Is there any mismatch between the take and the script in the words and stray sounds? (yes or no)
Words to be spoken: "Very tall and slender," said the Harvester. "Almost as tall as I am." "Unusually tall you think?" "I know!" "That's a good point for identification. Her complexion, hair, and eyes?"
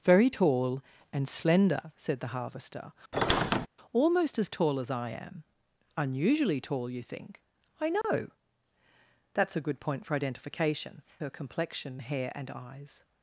yes